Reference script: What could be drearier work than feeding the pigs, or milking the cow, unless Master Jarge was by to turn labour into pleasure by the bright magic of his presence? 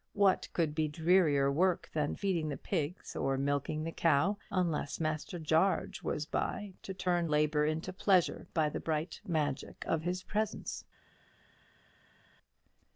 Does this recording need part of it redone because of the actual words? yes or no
no